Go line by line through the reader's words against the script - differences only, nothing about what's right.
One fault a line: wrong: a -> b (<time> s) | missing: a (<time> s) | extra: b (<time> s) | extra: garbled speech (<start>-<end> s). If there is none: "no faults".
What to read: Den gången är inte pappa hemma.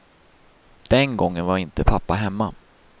wrong: är -> var (1.4 s)